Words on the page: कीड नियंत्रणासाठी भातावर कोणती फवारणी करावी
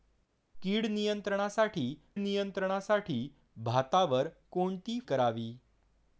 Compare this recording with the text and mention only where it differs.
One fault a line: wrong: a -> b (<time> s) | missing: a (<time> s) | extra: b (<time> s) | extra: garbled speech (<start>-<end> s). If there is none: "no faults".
extra: नियंत्रणासाठी (2.1 s)
missing: फवारणी (5.0 s)